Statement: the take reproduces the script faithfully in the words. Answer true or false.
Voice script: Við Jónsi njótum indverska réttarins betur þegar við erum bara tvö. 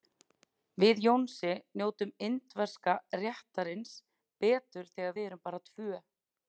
true